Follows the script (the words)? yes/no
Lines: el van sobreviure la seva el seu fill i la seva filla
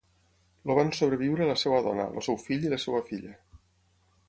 no